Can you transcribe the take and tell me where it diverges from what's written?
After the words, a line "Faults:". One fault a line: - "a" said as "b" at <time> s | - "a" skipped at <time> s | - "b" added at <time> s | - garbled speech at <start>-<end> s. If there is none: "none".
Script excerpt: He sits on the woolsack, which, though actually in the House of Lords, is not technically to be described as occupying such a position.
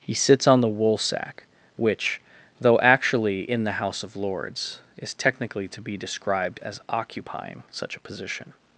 He sits on the woolsack, which, though actually in the House of Lords, is technically to be described as occupying such a position.
Faults:
- "not" skipped at 5.1 s